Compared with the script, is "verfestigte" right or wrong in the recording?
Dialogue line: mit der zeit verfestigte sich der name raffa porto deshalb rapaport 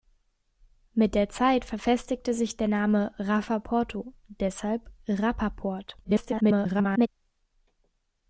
right